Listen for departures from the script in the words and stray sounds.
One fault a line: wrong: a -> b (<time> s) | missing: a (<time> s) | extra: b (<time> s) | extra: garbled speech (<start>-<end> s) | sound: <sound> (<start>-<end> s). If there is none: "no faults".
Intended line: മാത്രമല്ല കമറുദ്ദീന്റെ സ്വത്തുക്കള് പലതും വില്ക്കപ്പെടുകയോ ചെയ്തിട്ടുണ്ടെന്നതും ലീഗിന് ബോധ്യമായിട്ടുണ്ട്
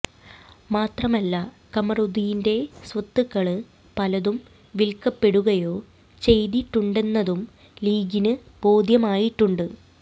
no faults